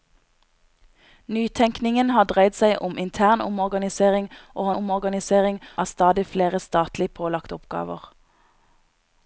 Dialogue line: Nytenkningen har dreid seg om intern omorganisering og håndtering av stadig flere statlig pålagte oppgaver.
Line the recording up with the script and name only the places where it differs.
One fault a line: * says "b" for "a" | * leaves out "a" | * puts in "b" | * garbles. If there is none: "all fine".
* says "omorganisering" for "håndtering"